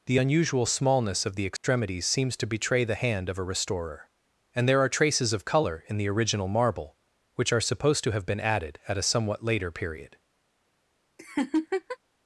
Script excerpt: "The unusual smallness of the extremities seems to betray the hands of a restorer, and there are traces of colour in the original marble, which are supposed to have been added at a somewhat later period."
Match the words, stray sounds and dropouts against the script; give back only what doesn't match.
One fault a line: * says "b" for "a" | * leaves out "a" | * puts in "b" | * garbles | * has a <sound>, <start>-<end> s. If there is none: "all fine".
* has a dropout, 1.6-1.6 s
* says "hand" for "hands"
* has a laugh, 11.2-12.0 s